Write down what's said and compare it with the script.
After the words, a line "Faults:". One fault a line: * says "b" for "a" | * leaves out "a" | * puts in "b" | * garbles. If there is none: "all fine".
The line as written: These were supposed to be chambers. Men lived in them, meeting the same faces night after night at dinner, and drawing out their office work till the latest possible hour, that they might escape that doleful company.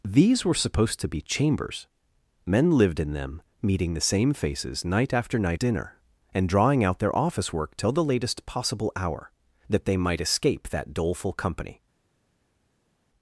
These were supposed to be chambers. Men lived in them, meeting the same faces night after night dinner, and drawing out their office work till the latest possible hour, that they might escape that doleful company.
Faults:
* leaves out "at"